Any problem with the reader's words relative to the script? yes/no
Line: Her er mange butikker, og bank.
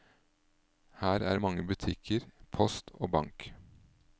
yes